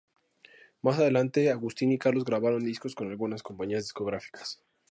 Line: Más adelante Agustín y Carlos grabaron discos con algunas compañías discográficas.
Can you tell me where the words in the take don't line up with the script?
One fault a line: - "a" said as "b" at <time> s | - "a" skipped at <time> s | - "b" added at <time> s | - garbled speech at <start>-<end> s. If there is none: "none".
none